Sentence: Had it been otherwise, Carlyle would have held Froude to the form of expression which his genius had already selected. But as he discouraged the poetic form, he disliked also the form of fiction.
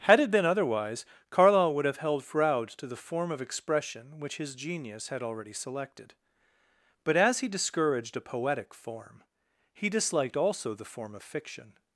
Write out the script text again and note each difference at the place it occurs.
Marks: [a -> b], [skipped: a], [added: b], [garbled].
Had it been otherwise, Carlyle would have held Froude to the form of expression which his genius had already selected. But as he discouraged [the -> a] poetic form, he disliked also the form of fiction.